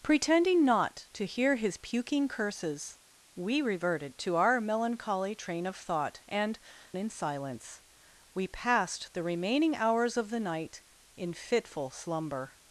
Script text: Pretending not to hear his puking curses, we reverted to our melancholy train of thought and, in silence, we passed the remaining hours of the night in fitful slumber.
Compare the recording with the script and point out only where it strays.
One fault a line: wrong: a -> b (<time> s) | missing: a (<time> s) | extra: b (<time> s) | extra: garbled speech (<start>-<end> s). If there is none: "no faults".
no faults